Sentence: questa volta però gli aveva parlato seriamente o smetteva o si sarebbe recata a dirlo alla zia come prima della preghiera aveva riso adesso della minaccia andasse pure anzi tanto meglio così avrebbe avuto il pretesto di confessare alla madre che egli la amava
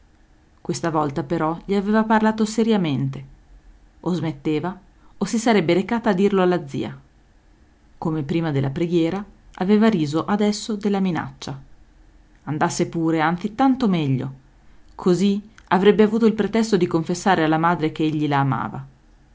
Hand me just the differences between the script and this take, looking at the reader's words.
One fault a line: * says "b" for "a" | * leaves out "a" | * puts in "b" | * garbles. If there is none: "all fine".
all fine